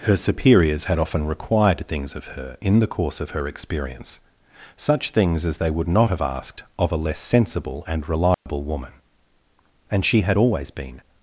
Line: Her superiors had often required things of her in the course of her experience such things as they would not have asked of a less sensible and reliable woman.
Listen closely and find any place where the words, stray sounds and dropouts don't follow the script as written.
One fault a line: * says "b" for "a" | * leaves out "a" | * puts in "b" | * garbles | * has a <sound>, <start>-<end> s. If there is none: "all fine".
* has a dropout, 8.3-8.5 s
* puts in "And she had always been"